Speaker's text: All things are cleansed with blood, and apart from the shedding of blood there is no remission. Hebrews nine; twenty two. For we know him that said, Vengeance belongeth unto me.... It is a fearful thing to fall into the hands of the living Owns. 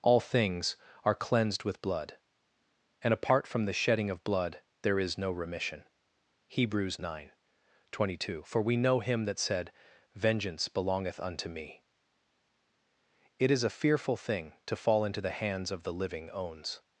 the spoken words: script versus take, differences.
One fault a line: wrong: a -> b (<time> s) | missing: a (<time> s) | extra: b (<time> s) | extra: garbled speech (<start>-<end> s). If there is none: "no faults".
no faults